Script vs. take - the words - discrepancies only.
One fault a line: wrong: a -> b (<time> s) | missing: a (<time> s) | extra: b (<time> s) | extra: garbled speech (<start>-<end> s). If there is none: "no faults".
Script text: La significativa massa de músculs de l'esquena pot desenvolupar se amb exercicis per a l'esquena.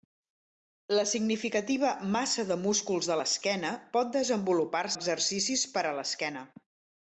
missing: se amb (4.8 s)